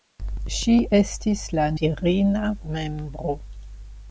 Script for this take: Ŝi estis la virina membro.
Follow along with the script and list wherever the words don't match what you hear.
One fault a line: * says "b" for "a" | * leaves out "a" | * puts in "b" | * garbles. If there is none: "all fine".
all fine